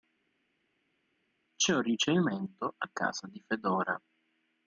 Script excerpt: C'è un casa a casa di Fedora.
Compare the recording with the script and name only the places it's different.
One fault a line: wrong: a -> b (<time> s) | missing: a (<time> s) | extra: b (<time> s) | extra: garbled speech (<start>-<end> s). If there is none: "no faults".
wrong: casa -> ricevimento (1.8 s)